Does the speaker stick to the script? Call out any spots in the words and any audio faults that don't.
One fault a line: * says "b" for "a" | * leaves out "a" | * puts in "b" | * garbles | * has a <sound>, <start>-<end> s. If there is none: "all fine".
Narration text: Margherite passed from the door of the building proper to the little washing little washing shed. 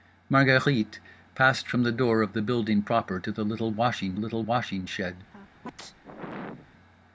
* has a sneeze, 5.3-6.7 s